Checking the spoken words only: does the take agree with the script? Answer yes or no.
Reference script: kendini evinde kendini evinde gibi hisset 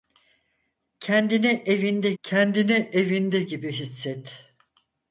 yes